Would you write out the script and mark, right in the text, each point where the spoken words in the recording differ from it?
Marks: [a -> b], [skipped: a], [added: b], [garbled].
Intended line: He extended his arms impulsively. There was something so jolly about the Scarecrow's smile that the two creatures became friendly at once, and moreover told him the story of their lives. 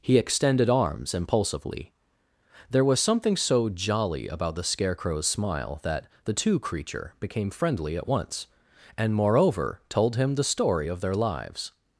He extended [skipped: his] arms impulsively. There was something so jolly about the Scarecrow's smile that the two [creatures -> creature] became friendly at once, and moreover told him the story of their lives.